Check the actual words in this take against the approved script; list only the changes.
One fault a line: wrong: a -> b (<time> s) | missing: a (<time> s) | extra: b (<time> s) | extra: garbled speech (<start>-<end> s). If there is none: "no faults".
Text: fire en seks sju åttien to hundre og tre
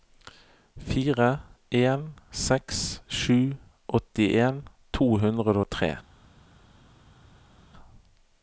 no faults